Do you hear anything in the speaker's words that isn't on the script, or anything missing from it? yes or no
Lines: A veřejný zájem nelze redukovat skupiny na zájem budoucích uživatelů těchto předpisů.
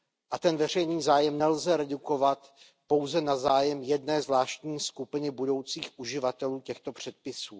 yes